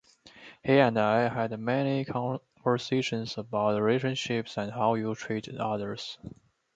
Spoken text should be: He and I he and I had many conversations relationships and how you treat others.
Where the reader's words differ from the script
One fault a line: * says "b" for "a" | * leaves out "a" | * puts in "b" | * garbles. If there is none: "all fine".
* leaves out "he and I"
* puts in "about"